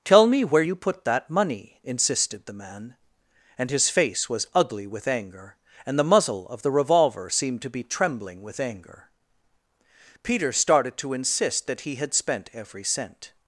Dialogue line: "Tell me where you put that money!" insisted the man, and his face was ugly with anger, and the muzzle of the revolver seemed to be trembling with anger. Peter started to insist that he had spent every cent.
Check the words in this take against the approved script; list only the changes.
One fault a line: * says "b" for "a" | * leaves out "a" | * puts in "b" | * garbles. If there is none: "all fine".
all fine